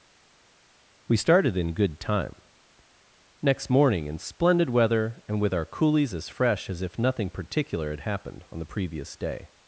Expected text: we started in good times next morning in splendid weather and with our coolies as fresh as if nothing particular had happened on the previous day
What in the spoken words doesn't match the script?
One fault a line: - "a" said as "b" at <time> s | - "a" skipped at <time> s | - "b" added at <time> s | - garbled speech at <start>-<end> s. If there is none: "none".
- "times" said as "time" at 2.0 s